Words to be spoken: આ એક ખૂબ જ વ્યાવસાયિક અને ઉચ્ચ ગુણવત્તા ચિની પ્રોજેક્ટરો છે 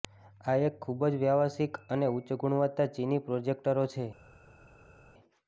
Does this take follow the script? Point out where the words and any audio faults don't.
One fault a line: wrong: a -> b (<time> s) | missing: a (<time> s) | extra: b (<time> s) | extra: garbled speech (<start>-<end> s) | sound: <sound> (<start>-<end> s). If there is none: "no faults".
no faults